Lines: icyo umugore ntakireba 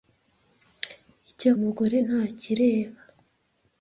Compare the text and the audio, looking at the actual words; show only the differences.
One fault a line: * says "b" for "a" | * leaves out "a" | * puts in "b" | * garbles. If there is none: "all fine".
all fine